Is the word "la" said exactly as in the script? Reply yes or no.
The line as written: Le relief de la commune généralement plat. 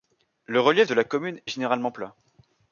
yes